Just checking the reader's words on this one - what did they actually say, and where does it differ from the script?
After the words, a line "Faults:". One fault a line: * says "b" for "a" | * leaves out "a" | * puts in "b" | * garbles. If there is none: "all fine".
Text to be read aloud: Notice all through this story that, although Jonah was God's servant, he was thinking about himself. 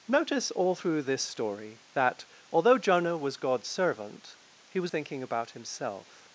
Notice all through this story that, although Jonah was God's servant, he was thinking about himself.
Faults:
all fine